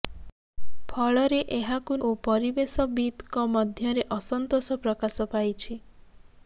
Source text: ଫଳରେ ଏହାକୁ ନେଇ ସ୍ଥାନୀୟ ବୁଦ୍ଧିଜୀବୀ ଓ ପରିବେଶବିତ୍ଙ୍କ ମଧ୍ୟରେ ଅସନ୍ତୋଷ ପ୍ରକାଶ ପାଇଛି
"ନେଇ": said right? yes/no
no